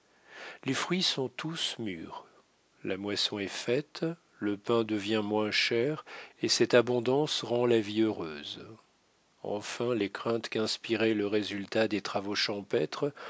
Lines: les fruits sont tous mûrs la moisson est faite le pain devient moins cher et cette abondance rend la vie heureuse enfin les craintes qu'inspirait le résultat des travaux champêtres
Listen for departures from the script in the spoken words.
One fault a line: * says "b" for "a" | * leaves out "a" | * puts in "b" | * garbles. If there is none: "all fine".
all fine